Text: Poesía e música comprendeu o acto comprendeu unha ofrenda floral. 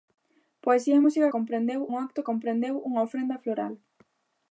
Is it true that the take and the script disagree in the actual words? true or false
false